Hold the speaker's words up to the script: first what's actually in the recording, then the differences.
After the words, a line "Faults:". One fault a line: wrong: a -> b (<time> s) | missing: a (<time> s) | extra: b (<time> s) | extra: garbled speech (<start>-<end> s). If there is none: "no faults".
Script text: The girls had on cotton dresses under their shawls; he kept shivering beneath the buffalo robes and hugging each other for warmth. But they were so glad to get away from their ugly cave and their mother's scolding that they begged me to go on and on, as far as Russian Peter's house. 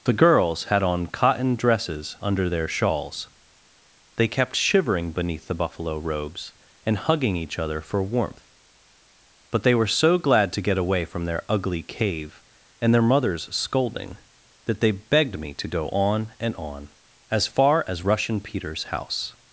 The girls had on cotton dresses under their shawls; they kept shivering beneath the buffalo robes and hugging each other for warmth. But they were so glad to get away from their ugly cave and their mother's scolding that they begged me to go on and on, as far as Russian Peter's house.
Faults:
wrong: he -> they (4.2 s)